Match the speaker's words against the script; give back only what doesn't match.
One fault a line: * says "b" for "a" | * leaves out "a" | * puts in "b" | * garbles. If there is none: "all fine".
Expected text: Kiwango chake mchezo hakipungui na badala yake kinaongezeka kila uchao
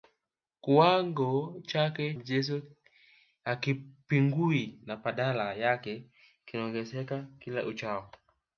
all fine